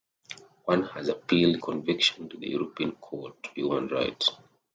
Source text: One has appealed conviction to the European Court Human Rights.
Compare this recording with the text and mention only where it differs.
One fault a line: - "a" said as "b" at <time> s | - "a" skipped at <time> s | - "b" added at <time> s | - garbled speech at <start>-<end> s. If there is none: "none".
none